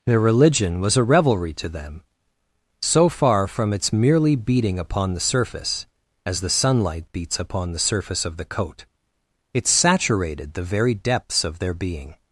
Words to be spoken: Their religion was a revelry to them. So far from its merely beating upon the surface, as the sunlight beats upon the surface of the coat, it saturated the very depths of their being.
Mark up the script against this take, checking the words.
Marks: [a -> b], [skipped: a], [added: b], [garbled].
Their religion was a revelry to them. So far from its merely beating upon the surface, as the sunlight beats upon the surface of the coat, it saturated the very depths of their being.